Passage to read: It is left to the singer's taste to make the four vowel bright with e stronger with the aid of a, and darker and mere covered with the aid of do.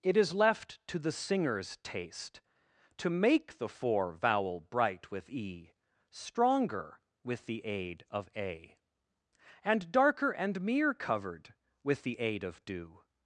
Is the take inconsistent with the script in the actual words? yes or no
no